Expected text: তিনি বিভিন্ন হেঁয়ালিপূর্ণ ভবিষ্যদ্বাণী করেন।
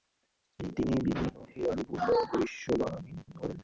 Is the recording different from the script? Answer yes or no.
no